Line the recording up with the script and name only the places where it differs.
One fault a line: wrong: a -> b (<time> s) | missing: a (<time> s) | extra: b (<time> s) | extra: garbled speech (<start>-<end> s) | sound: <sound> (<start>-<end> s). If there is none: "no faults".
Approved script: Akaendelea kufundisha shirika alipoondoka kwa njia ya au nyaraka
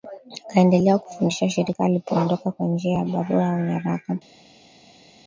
extra: barua (3.0 s)